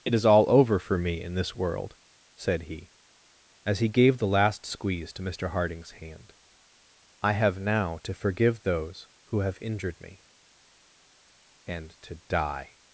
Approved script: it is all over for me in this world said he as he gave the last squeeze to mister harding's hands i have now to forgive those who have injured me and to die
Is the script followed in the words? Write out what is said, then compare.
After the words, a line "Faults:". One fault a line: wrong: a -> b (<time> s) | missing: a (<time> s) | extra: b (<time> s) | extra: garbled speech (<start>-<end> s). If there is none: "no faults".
it is all over for me in this world said he as he gave the last squeeze to mister harding's hand i have now to forgive those who have injured me and to die
Faults:
wrong: hands -> hand (5.9 s)